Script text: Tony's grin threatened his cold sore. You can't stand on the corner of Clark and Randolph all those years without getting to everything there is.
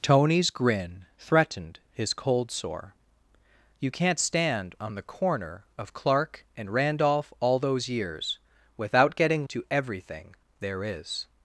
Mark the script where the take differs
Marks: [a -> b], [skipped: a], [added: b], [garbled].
Tony's grin threatened his cold sore. You can't stand on the corner of Clark and Randolph all those years without getting to everything there is.